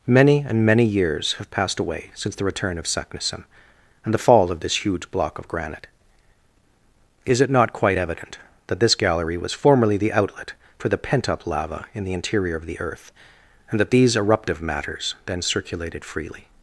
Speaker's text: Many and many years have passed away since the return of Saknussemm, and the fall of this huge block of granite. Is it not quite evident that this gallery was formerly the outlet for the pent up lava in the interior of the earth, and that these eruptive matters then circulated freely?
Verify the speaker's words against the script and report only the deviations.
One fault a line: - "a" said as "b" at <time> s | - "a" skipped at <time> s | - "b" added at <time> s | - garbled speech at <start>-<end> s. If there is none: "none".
none